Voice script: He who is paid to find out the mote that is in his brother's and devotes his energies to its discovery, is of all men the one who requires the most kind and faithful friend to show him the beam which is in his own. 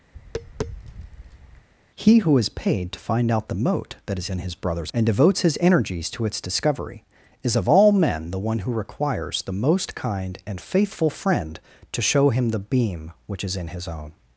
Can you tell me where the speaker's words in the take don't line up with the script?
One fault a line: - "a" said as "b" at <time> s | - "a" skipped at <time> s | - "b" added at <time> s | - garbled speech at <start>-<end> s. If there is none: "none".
none